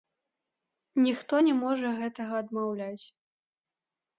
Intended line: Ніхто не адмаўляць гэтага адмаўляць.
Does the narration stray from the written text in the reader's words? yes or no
yes